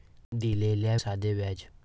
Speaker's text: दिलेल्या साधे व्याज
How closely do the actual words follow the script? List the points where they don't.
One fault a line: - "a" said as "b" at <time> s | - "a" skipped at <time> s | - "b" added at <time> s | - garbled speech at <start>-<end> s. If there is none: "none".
none